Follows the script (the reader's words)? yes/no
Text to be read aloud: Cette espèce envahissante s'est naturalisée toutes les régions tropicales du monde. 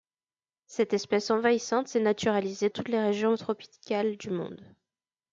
yes